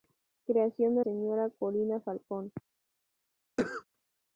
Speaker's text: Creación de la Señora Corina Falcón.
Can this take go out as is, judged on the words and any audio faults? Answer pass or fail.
fail